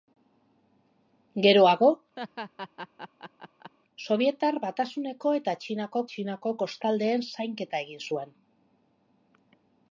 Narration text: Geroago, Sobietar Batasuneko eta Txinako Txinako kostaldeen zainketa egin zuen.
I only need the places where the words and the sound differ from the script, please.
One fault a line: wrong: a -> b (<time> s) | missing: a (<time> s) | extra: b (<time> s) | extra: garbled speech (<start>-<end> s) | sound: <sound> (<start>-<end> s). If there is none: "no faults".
sound: laugh (2.2-3.7 s)